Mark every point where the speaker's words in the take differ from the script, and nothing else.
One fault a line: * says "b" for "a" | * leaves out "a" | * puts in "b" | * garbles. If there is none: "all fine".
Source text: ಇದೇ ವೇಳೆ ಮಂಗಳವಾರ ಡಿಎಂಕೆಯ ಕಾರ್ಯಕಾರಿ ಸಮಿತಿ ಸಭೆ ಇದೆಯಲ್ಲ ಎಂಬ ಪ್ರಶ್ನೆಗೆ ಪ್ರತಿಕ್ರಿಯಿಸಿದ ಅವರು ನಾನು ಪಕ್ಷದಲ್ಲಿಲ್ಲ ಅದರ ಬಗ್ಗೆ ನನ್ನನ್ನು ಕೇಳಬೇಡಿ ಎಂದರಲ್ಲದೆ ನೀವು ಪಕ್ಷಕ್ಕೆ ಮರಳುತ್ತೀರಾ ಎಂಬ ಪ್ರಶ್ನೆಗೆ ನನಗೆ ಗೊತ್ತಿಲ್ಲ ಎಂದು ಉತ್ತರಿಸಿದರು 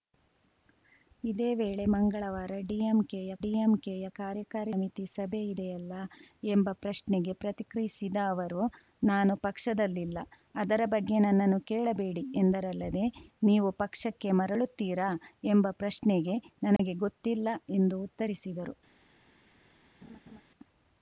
* puts in "ಡಿಎಂಕೆಯ"